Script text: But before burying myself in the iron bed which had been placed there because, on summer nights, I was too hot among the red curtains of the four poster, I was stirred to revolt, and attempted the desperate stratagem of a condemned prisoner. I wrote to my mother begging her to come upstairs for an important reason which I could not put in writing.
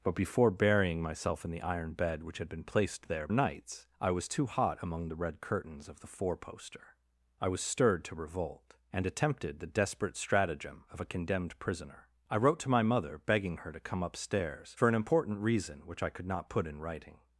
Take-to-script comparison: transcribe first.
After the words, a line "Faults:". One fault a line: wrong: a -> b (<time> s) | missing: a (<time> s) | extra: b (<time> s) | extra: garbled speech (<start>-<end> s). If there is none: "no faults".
But before burying myself in the iron bed which had been placed there nights, I was too hot among the red curtains of the four poster, I was stirred to revolt, and attempted the desperate stratagem of a condemned prisoner. I wrote to my mother begging her to come upstairs for an important reason which I could not put in writing.
Faults:
missing: because on summer (3.3 s)